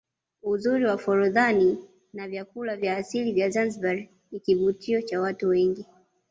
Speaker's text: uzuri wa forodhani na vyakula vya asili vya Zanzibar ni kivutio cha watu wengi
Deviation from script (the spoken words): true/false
false